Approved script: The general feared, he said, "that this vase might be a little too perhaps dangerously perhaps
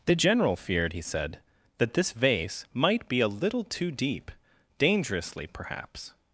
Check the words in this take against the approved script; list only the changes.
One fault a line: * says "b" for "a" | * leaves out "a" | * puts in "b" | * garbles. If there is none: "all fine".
* says "deep" for "perhaps"